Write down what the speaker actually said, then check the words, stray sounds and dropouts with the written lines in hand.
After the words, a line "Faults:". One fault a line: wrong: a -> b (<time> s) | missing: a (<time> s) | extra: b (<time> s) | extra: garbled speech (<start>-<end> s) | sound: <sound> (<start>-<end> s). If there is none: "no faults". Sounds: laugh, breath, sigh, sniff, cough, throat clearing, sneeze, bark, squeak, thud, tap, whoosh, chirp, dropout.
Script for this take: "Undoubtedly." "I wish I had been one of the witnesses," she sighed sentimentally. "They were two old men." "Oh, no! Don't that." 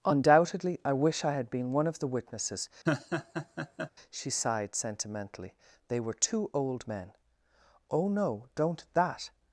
"Undoubtedly." "I wish I had been one of the witnesses," she sighed sentimentally. "They were two old men." "Oh, no! Don't that."
Faults:
sound: laugh (2.9-3.9 s)